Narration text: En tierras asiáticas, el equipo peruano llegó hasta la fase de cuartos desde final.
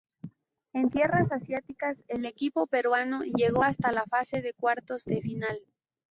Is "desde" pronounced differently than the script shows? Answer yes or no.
yes